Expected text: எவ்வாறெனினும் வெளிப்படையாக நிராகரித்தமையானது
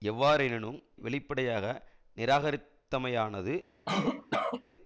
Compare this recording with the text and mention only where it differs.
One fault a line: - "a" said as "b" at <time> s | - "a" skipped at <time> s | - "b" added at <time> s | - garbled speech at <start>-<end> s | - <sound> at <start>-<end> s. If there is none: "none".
- cough at 3.9-4.6 s